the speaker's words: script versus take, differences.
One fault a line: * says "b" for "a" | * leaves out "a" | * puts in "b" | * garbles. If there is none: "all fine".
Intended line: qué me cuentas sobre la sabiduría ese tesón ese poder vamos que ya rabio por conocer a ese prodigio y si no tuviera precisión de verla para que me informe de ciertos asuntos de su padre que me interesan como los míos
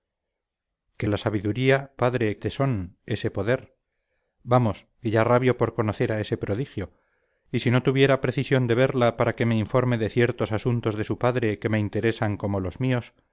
* leaves out "me cuentas sobre"
* says "padre" for "ese"